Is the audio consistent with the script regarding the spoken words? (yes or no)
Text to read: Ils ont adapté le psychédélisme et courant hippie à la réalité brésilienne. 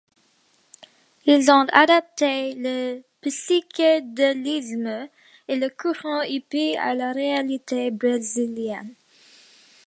no